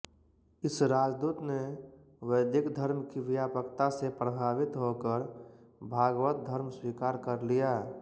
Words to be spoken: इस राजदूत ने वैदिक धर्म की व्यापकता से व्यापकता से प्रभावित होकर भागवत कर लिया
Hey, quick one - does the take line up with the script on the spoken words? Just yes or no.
no